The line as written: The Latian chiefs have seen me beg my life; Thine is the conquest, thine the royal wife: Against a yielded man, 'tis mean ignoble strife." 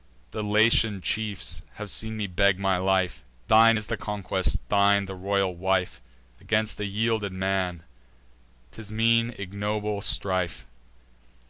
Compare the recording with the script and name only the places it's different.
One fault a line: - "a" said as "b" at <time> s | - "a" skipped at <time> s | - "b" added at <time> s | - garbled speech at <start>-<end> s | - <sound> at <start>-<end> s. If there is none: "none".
none